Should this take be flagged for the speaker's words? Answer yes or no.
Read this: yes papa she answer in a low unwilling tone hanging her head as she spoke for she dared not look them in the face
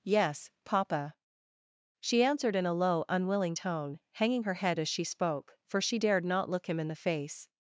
yes